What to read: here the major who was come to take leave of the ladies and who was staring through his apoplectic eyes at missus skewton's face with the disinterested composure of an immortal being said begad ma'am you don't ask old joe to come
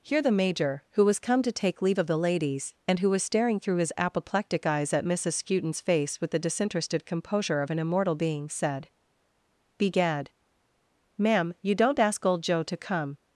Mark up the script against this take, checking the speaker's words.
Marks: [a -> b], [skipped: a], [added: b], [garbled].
here the major who was come to take leave of the ladies and who was staring through his apoplectic eyes at missus skewton's face with the disinterested composure of an immortal being said begad ma'am you don't ask old joe to come